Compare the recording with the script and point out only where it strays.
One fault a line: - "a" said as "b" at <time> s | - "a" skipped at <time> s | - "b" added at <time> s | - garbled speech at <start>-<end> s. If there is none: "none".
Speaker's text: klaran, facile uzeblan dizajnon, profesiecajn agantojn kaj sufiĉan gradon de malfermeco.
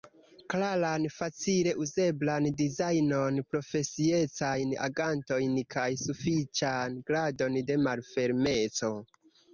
none